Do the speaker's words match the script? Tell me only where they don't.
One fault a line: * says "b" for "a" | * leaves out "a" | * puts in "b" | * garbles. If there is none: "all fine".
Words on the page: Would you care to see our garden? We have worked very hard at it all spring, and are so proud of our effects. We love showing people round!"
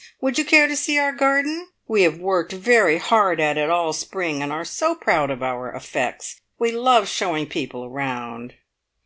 all fine